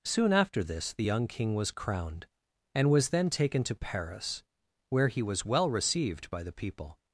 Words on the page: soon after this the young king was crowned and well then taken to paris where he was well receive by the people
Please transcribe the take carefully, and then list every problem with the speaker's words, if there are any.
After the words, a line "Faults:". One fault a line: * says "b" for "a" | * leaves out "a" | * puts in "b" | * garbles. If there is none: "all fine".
soon after this the young king was crowned and was then taken to paris where he was well received by the people
Faults:
* says "was" for "well"
* says "received" for "receive"